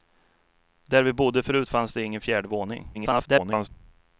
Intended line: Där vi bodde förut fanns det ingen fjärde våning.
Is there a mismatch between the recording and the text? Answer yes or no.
yes